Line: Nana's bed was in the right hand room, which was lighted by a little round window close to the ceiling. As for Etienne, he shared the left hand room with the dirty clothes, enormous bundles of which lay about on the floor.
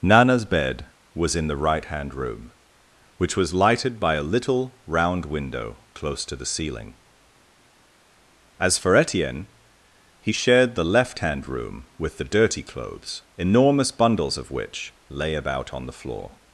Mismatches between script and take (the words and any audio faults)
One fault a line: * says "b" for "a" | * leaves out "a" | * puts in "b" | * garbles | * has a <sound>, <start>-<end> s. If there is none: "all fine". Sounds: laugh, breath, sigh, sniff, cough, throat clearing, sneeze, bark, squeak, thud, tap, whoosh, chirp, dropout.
all fine